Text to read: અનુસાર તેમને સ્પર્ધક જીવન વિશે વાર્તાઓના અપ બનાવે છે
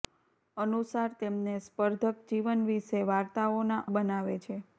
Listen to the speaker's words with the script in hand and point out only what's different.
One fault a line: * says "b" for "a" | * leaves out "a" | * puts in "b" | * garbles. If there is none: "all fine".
* leaves out "અપ"